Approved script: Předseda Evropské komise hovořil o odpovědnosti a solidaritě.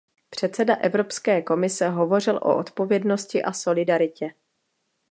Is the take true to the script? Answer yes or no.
yes